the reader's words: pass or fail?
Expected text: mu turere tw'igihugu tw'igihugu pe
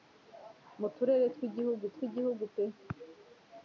pass